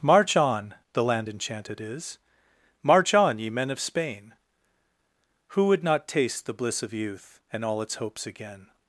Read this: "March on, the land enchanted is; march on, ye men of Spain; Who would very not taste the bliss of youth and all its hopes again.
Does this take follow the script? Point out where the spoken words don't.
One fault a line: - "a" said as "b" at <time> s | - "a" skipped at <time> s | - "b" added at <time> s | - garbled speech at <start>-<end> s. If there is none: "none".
- "very" skipped at 5.8 s